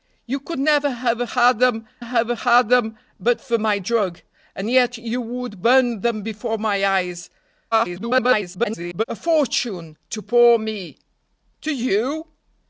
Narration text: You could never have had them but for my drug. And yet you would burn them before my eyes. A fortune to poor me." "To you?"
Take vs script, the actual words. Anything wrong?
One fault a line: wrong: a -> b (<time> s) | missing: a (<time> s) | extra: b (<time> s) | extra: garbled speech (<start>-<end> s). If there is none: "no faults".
extra: have had them (2.0 s)
extra: garbled speech (7.7-9.0 s)